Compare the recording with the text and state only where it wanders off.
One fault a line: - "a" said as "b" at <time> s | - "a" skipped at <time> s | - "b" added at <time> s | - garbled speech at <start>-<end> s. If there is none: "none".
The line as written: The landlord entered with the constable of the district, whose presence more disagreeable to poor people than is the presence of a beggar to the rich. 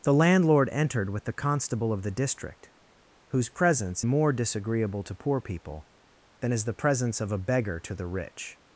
none